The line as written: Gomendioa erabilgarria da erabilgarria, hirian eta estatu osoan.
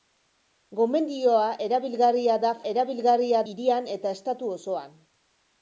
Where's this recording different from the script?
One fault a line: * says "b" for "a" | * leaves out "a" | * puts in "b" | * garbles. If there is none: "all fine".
all fine